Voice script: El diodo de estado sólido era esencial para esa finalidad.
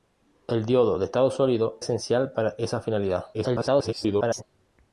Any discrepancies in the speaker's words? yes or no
yes